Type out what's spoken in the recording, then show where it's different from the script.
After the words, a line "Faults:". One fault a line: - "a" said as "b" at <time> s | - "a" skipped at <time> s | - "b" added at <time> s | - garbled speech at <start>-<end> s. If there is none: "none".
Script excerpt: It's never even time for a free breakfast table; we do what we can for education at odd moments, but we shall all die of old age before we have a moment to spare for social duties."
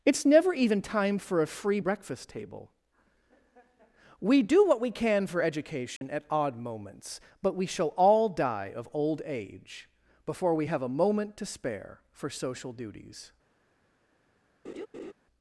It's never even time for a free breakfast table; we do what we can for education at odd moments, but we shall all die of old age before we have a moment to spare for social duties."
Faults:
none